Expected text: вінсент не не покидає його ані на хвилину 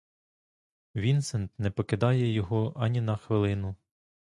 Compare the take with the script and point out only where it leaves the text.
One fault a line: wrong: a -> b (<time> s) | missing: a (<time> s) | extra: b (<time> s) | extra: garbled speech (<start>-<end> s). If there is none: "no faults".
missing: не (1.7 s)